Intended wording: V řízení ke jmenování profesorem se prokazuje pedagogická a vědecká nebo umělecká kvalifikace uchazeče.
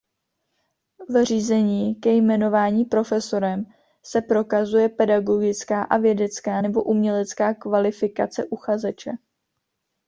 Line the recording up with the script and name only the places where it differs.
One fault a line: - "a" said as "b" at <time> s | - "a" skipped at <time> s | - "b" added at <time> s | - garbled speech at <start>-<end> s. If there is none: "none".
none